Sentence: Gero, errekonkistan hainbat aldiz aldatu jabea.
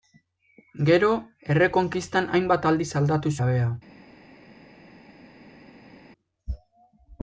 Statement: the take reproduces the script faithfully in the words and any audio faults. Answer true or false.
true